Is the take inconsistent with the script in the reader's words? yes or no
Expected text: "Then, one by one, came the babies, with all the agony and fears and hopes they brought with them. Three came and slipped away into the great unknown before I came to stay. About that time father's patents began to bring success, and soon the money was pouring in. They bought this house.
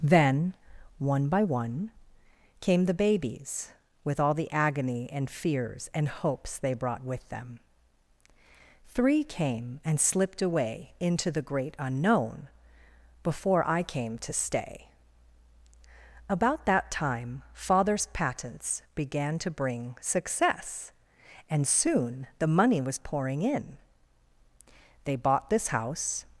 no